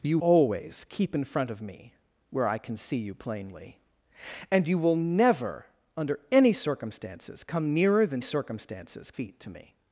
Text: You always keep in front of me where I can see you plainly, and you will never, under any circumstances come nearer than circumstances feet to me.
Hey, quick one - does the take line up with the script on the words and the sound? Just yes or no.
yes